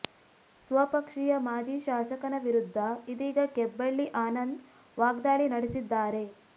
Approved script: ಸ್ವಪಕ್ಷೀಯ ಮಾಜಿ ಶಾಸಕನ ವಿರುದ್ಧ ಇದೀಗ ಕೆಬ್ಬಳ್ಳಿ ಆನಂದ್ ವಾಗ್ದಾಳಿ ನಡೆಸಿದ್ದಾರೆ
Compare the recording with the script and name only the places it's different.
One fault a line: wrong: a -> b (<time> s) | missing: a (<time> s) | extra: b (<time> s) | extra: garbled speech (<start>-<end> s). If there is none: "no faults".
no faults